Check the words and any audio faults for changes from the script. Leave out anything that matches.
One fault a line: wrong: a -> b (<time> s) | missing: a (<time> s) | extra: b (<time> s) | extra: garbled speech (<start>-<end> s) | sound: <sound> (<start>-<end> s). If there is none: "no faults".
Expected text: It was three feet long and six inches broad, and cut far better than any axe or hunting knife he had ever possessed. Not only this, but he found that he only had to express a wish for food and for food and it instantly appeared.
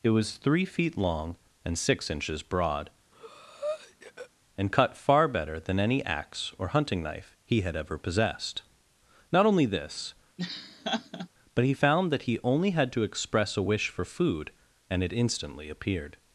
sound: breath (3.1-4.3 s)
sound: laugh (10.4-11.3 s)
missing: for food and (15.0 s)